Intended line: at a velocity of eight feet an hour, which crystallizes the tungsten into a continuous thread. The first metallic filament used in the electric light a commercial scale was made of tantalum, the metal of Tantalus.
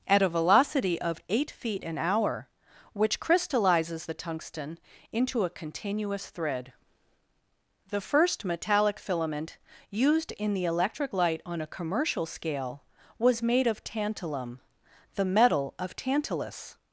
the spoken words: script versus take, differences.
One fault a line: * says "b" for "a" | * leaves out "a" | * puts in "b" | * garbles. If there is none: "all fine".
* puts in "on"